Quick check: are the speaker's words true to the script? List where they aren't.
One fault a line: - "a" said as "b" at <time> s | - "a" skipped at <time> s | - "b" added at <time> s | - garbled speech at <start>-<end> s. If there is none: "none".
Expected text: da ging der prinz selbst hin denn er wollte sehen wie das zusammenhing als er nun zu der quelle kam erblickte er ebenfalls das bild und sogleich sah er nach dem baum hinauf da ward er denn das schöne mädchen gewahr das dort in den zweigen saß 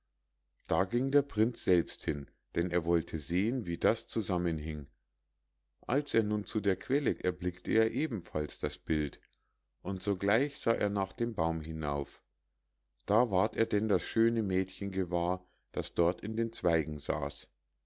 - "kam" skipped at 7.1 s